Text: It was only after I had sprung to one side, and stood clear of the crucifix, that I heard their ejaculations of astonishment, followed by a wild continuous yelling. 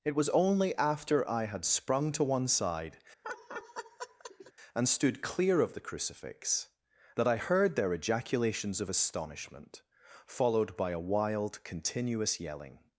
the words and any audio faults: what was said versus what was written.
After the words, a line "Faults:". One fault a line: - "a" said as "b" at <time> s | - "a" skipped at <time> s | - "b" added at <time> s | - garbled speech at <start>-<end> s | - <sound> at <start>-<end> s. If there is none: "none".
It was only after I had sprung to one side, and stood clear of the crucifix, that I heard their ejaculations of astonishment, followed by a wild continuous yelling.
Faults:
- laugh at 3.2-4.5 s